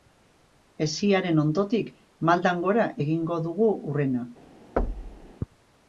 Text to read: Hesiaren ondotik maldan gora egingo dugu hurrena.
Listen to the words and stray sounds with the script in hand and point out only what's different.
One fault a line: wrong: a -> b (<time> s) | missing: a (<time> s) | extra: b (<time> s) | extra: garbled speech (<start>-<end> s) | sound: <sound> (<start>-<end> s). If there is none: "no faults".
sound: thud (4.8-5.3 s)